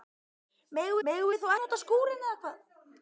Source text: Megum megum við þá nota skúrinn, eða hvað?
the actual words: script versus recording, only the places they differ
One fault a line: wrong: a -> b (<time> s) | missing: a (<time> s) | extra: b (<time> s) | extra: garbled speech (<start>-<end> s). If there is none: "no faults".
no faults